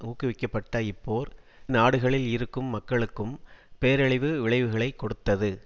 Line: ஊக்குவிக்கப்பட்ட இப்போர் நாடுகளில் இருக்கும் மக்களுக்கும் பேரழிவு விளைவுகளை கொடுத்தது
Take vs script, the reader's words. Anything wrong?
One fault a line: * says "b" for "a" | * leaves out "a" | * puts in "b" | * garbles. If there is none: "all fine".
all fine